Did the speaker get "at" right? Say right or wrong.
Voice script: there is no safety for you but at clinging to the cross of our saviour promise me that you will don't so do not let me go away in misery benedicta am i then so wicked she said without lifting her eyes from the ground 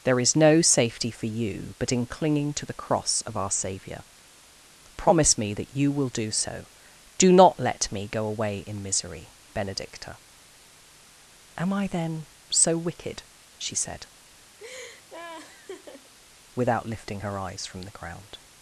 wrong